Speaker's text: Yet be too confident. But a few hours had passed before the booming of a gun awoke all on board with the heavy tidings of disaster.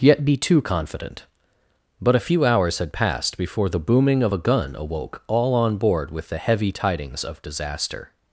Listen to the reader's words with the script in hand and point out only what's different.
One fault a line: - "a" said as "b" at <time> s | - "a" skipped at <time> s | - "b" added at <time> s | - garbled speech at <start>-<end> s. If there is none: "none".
none